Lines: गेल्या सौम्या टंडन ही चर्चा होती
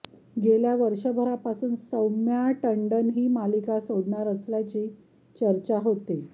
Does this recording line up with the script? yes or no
no